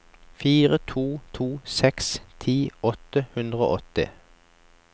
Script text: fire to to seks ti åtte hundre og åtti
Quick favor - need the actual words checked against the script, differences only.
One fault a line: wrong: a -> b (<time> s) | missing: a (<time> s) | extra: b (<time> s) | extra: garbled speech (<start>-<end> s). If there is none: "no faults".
no faults